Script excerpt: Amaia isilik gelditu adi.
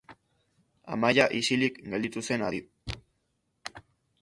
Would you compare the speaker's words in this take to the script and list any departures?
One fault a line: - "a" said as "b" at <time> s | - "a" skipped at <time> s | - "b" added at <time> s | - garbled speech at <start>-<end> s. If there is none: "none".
- "zen" added at 2.3 s